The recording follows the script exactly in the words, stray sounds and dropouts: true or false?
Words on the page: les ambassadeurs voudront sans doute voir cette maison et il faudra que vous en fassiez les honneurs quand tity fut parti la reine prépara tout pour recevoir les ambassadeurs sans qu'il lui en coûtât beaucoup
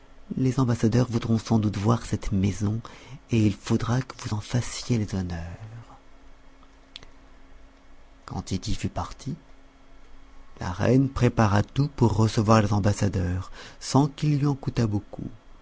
true